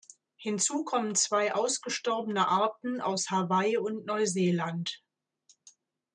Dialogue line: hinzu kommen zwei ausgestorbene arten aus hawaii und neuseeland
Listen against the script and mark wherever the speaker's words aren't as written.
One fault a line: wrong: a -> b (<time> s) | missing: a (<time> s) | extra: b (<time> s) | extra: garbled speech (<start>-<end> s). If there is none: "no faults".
no faults